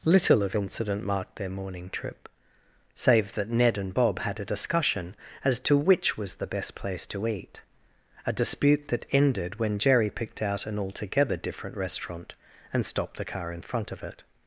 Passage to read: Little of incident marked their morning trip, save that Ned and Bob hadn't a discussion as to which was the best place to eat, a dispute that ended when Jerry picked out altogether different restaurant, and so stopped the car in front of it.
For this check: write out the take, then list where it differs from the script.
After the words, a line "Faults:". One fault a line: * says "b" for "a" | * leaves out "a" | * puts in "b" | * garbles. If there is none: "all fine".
Little of incident marked their morning trip, save that Ned and Bob had a discussion as to which was the best place to eat, a dispute that ended when Jerry picked out an altogether different restaurant, and stopped the car in front of it.
Faults:
* says "had" for "hadn't"
* puts in "an"
* leaves out "so"